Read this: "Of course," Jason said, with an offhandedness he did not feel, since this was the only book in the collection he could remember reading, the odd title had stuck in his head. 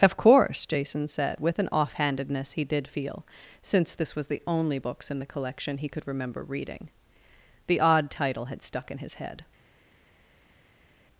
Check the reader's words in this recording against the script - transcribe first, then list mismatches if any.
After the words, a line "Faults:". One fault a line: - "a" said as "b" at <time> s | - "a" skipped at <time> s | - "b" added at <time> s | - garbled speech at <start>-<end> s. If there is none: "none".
"Of course," Jason said, with an offhandedness he did feel, since this was the only books in the collection he could remember reading, the odd title had stuck in his head.
Faults:
- "not" skipped at 2.9 s
- "book" said as "books" at 4.8 s